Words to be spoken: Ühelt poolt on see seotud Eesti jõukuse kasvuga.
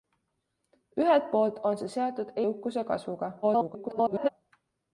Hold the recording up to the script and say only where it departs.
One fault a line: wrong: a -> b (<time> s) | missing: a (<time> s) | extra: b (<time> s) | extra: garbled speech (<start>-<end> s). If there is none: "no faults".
missing: Eesti (2.4 s)
extra: garbled speech (3.4-4.3 s)